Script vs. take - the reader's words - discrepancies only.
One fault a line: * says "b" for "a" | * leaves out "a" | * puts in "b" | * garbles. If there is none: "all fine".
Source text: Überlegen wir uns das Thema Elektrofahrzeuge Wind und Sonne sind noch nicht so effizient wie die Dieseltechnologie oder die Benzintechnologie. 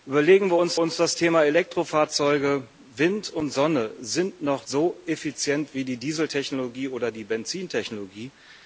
* puts in "uns"
* leaves out "nicht"